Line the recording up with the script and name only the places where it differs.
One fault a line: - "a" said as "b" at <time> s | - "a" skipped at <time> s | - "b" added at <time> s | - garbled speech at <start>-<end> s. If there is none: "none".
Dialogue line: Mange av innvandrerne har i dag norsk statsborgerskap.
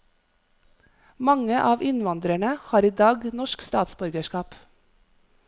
none